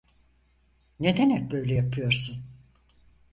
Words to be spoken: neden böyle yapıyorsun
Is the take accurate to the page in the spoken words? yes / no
no